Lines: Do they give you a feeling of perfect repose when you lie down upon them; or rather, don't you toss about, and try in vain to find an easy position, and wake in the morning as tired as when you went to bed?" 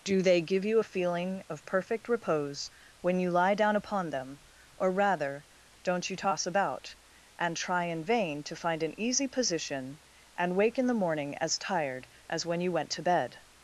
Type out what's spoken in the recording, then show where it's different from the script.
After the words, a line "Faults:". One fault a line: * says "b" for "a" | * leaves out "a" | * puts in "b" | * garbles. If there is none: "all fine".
Do they give you a feeling of perfect repose when you lie down upon them; or rather, don't you toss about, and try in vain to find an easy position, and wake in the morning as tired as when you went to bed?"
Faults:
all fine